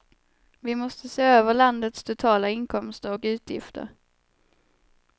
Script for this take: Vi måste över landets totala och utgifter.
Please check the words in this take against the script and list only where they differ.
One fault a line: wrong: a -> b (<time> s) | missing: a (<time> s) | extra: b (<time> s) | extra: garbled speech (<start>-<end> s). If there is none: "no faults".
extra: se (1.1 s)
extra: inkomster (2.5 s)